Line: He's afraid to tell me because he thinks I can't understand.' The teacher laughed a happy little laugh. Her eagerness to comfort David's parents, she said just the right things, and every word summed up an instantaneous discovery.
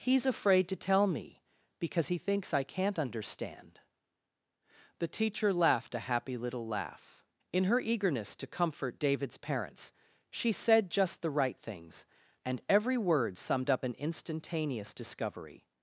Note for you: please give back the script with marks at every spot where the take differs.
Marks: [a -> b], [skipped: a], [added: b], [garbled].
He's afraid to tell me because he thinks I can't understand.' The teacher laughed a happy little laugh. [added: In] Her eagerness to comfort David's parents, she said just the right things, and every word summed up an instantaneous discovery.